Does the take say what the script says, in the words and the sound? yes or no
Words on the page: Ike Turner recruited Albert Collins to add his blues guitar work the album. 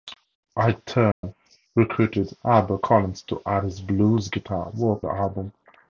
no